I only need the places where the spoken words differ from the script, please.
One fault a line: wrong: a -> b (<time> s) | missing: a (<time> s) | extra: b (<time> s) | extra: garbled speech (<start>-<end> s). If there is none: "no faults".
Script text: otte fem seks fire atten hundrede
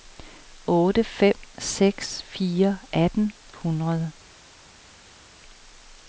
no faults